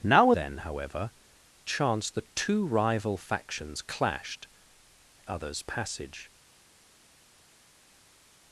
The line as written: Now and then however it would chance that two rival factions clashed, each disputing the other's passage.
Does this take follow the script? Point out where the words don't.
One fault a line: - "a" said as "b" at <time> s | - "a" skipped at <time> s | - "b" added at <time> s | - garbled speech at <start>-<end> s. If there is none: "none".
- "and" skipped at 0.3 s
- "it would" skipped at 1.1 s
- "each disputing the" skipped at 4.5 s